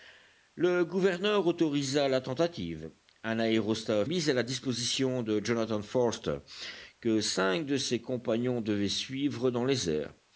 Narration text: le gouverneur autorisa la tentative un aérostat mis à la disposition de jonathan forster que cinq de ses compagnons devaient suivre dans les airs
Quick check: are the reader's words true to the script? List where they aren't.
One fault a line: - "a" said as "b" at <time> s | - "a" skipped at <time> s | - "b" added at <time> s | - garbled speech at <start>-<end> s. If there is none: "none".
none